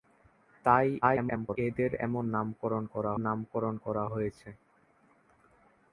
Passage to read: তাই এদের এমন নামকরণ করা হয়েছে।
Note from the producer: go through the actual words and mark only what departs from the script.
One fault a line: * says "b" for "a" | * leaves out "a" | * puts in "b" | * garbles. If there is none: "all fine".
* garbles
* puts in "নামকরণ করা"